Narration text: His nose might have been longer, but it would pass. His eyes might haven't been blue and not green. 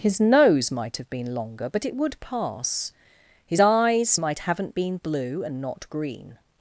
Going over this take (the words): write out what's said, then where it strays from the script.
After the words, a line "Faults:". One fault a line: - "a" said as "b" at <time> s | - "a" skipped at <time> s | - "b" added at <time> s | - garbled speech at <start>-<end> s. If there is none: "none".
His nose might have been longer, but it would pass. His eyes might haven't been blue and not green.
Faults:
none